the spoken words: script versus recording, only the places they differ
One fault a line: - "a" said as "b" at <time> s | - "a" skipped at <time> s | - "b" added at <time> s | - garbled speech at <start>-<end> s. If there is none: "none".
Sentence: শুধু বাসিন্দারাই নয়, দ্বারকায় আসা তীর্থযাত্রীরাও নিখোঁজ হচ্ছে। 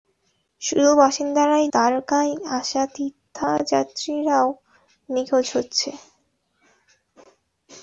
- "নয়" skipped at 1.6 s